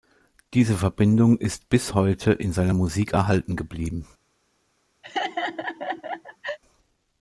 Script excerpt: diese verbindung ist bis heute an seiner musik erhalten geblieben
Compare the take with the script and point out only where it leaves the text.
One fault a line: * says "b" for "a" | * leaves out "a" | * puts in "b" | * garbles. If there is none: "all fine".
* says "in" for "an"